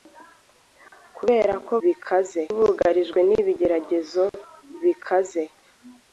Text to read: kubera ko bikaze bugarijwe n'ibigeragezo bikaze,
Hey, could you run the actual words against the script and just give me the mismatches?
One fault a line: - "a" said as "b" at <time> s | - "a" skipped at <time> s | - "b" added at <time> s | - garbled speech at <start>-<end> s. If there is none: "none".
none